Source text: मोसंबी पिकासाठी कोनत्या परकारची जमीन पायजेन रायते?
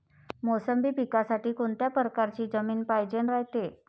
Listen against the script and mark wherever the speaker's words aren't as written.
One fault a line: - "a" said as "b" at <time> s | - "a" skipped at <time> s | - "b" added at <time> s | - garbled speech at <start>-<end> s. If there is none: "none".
none